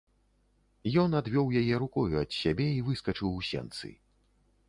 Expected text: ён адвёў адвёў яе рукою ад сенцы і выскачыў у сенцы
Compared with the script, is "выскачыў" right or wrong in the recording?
right